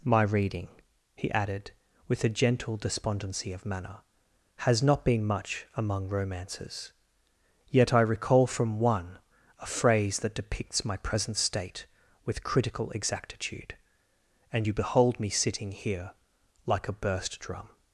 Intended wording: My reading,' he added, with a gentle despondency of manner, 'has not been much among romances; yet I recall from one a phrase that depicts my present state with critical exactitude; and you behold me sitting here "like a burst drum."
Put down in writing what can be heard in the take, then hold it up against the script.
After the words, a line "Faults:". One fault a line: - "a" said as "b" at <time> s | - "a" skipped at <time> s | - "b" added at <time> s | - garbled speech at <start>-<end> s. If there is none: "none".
My reading,' he added, with a gentle despondency of manner, 'has not been much among romances; yet I recall from one a phrase that depicts my present state with critical exactitude; and you behold me sitting here "like a burst drum."
Faults:
none